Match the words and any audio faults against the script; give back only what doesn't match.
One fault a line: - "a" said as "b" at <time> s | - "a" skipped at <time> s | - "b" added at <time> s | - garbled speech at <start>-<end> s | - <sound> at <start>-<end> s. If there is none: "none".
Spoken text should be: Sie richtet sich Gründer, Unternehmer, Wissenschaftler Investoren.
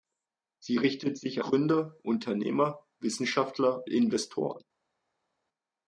none